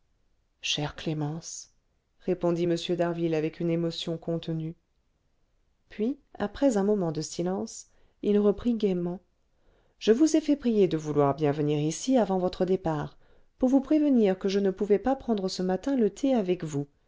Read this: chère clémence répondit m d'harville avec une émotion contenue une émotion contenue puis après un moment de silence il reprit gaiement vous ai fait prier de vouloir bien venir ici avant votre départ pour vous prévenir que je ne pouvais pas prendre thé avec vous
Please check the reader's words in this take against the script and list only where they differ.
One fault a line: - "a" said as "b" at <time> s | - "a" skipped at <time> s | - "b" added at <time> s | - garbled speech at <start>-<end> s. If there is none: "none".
- "une émotion contenue" skipped at 4.7 s
- "je" added at 10.0 s
- "ce matin le" added at 15.5 s